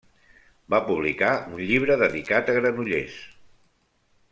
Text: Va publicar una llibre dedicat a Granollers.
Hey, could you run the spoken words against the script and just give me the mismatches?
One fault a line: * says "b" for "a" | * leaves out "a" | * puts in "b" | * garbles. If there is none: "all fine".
* says "un" for "una"